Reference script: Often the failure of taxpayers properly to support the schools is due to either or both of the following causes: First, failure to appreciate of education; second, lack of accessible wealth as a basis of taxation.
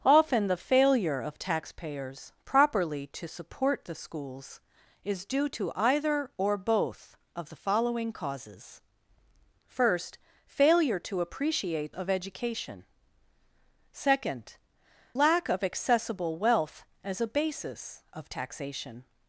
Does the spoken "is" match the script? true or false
true